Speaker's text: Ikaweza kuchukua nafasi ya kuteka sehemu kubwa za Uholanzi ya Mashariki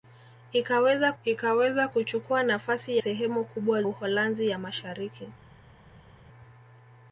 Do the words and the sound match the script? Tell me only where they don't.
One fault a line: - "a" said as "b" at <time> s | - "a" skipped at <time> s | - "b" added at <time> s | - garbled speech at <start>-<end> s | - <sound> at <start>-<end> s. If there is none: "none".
- "ikaweza" added at 1.2 s
- "ya kuteka" skipped at 3.0 s
- "za" skipped at 3.8 s